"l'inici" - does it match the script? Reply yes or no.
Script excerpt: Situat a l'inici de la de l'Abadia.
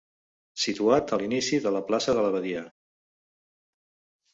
yes